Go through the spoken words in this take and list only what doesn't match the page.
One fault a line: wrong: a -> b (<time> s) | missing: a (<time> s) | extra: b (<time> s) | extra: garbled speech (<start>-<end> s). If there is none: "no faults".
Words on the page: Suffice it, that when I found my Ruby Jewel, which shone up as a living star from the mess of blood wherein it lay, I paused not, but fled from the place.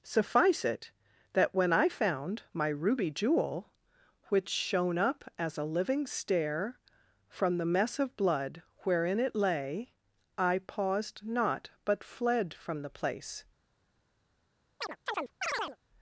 wrong: star -> stair (6.1 s)